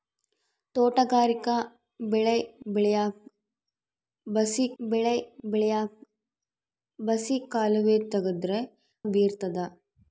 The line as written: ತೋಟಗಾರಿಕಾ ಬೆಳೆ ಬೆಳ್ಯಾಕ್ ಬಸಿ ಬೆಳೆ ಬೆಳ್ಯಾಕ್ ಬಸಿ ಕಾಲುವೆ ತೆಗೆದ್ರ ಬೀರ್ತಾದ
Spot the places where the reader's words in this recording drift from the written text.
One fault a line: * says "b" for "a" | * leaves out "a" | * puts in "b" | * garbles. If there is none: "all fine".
all fine